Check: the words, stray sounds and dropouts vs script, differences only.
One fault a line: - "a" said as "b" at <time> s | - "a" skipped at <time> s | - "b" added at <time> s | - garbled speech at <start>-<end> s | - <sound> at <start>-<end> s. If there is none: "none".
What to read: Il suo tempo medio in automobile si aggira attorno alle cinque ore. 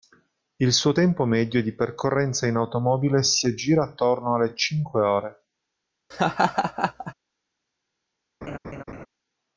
- "di percorrenza" added at 1.6 s
- laugh at 6.1-7.1 s
- laugh at 8.4-9.1 s